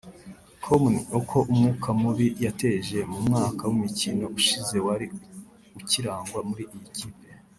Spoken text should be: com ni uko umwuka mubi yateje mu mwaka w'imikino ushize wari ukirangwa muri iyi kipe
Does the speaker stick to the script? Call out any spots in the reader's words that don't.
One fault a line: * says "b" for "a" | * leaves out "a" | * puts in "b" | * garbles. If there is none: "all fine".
all fine